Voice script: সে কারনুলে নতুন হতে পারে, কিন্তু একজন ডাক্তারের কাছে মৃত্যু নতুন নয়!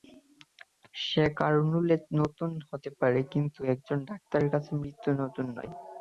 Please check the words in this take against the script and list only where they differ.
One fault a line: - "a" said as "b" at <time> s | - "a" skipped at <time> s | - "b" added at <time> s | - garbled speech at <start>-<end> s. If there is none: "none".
none